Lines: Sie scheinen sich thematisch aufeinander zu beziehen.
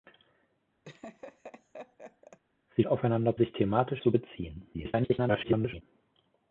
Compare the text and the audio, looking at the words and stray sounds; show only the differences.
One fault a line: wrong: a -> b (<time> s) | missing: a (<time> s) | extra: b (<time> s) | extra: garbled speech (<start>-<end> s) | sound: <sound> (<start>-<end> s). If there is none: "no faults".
sound: laugh (0.8-2.4 s)
wrong: scheinen -> aufeinander (2.9 s)
missing: aufeinander (4.0 s)
extra: garbled speech (4.7-5.8 s)